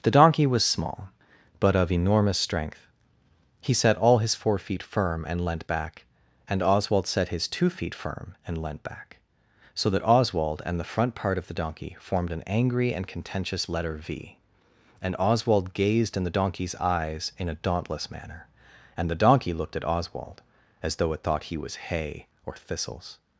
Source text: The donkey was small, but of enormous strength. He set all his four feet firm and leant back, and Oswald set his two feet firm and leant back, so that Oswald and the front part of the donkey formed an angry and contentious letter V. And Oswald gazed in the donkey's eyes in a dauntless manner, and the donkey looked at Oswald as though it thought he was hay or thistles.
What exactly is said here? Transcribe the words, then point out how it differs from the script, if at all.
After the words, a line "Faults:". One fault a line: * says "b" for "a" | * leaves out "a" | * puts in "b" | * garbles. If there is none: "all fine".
The donkey was small, but of enormous strength. He set all his four feet firm and leant back, and Oswald set his two feet firm and leant back, so that Oswald and the front part of the donkey formed an angry and contentious letter V. And Oswald gazed in the donkey's eyes in a dauntless manner, and the donkey looked at Oswald as though it thought he was hay or thistles.
Faults:
all fine